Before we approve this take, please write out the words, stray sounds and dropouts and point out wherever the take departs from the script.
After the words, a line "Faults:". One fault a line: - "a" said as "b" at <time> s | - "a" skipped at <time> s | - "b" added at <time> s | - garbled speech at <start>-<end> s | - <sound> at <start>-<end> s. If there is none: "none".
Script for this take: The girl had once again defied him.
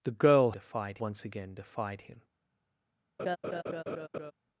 The girl defied once again defied him.
Faults:
- "had" said as "defied" at 0.5 s
- laugh at 3.2-4.3 s